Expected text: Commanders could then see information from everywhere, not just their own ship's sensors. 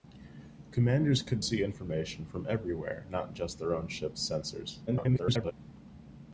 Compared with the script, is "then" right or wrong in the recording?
wrong